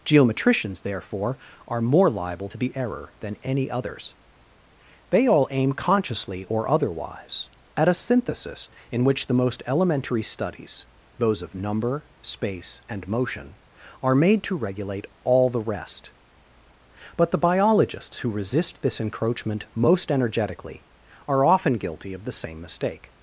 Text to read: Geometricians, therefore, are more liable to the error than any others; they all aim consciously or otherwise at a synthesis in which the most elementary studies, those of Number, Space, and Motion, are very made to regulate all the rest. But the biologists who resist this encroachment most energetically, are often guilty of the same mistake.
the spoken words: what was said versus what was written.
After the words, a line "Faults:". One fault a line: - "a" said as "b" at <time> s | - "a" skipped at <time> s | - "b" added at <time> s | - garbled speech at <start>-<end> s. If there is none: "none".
Geometricians, therefore, are more liable to the error than any others; they all aim consciously or otherwise at a synthesis in which the most elementary studies, those of Number, Space, and Motion, are made to regulate all the rest. But the biologists who resist this encroachment most energetically, are often guilty of the same mistake.
Faults:
- "very" skipped at 14.1 s